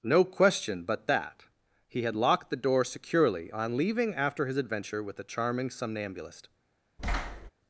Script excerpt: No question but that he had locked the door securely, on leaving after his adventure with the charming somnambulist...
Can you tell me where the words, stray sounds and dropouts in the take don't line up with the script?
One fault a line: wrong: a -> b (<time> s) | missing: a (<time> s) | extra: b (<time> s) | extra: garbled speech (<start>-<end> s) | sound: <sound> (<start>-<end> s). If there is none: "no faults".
sound: thud (7.0-7.5 s)